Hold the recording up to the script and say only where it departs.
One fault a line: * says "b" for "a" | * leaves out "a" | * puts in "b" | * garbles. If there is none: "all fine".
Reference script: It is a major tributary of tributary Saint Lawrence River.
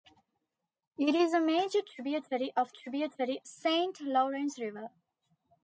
all fine